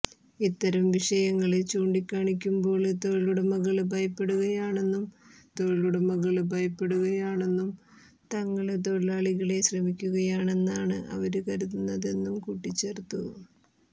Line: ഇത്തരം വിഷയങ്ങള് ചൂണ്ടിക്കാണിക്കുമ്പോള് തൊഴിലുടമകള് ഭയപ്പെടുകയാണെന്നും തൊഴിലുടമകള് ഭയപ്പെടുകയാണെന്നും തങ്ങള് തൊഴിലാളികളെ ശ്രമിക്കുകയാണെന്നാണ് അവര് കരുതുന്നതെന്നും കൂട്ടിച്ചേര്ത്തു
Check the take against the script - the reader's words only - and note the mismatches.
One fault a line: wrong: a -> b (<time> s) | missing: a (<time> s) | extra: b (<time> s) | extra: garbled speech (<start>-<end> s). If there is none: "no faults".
no faults